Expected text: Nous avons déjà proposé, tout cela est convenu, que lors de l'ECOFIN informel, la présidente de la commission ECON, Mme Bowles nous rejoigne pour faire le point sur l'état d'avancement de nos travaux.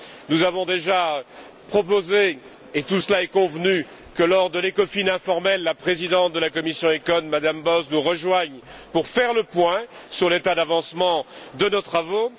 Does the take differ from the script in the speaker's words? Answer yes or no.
yes